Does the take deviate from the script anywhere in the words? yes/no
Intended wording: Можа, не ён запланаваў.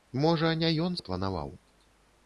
no